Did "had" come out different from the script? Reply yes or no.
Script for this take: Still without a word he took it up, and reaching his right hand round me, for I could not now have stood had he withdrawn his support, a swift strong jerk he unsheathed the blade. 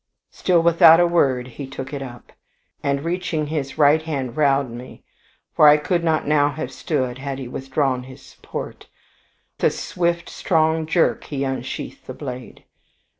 no